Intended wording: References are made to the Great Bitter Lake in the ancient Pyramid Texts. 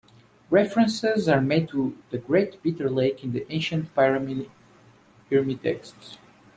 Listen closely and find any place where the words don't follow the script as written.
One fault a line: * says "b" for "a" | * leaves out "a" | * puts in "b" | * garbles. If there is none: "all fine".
all fine